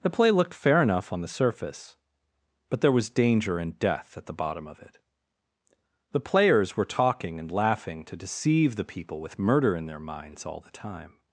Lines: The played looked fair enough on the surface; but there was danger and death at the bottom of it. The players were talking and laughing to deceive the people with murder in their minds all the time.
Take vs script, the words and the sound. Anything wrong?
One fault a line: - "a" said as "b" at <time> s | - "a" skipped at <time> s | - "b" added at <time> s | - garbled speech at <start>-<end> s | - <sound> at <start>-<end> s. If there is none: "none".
- "played" said as "play" at 0.1 s